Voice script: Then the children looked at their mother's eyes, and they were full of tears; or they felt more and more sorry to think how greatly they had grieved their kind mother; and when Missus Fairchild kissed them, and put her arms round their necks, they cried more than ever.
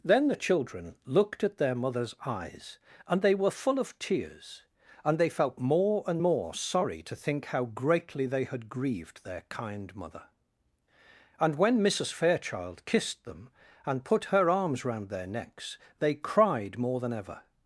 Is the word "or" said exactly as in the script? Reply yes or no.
no